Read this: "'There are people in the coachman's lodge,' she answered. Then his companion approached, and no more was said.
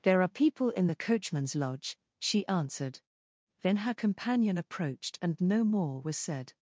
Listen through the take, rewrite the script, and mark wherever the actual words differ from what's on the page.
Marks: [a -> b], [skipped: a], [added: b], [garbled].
"'There are people in the coachman's lodge,' she answered. Then [his -> her] companion approached, and no more was said.